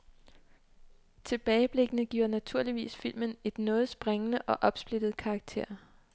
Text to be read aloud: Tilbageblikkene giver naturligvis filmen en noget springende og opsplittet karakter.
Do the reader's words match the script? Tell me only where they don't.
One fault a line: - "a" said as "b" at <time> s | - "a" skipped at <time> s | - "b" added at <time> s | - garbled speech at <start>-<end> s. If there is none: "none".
none